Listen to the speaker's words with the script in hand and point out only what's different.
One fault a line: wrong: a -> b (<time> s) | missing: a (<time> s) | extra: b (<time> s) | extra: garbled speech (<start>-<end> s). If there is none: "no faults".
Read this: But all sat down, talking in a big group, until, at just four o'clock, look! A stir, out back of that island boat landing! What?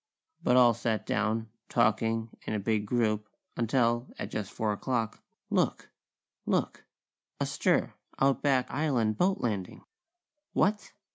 extra: look (6.5 s)
missing: of that (8.7 s)